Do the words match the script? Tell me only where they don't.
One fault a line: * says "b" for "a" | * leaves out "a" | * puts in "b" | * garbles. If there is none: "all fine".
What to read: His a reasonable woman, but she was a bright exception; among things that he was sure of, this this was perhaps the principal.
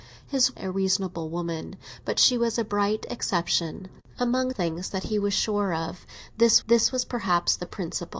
all fine